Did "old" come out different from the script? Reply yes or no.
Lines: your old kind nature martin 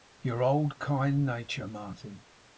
no